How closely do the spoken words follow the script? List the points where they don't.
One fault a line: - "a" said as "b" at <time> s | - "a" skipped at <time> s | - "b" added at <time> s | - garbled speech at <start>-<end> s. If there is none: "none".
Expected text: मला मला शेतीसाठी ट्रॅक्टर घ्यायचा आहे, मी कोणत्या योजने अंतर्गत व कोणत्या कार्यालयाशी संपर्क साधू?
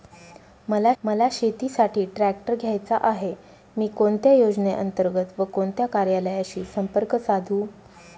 none